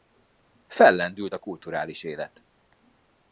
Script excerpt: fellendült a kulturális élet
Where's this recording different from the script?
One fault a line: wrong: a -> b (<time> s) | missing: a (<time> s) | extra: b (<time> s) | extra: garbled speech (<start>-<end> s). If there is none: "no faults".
no faults